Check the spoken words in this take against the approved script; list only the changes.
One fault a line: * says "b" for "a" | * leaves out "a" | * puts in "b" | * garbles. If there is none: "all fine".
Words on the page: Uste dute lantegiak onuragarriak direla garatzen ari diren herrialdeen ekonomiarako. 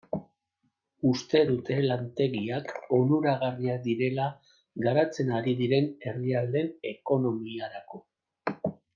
all fine